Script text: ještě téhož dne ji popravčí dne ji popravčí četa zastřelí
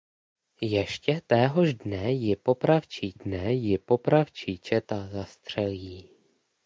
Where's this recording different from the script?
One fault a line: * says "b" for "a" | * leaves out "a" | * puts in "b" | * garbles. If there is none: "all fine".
all fine